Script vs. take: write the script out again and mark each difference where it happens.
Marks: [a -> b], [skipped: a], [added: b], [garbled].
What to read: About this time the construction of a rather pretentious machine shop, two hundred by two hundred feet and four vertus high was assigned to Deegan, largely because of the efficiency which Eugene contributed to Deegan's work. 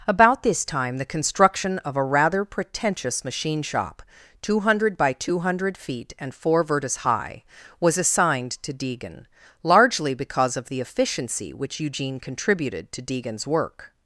About this time the construction of a rather pretentious machine shop, two hundred by two hundred feet and four vertus high was assigned to Deegan, largely because of the efficiency which Eugene contributed to Deegan's work.